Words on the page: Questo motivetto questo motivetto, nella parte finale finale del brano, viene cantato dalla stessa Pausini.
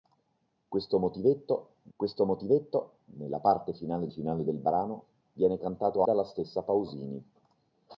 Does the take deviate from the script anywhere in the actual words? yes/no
no